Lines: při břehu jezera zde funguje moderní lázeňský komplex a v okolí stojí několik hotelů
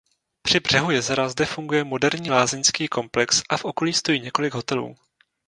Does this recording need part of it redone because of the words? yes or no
no